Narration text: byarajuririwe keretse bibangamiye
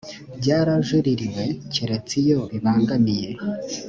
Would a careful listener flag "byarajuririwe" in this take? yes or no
no